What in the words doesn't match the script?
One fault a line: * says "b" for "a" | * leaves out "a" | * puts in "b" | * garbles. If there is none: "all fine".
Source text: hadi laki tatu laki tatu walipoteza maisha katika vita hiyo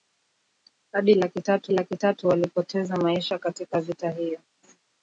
all fine